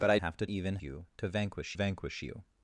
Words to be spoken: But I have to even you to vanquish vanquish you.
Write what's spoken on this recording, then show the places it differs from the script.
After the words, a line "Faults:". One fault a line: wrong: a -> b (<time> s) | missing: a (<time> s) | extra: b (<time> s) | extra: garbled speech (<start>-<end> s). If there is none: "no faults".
But I have to even you to vanquish vanquish you.
Faults:
no faults